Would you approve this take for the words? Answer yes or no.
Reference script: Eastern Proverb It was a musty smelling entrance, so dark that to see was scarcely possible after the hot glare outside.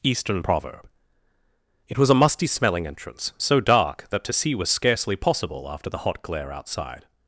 yes